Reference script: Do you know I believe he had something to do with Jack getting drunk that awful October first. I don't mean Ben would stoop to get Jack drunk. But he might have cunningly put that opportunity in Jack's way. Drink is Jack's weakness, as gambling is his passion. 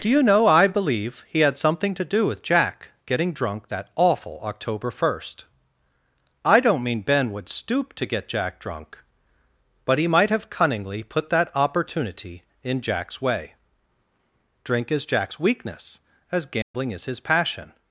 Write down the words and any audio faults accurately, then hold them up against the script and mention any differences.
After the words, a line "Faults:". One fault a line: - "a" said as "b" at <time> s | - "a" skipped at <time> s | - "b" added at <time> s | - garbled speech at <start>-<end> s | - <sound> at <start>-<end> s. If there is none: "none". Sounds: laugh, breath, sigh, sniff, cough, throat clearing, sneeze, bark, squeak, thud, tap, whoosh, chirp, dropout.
Do you know I believe he had something to do with Jack getting drunk that awful October first. I don't mean Ben would stoop to get Jack drunk. But he might have cunningly put that opportunity in Jack's way. Drink is Jack's weakness, as gambling is his passion.
Faults:
- dropout at 16.6-16.7 s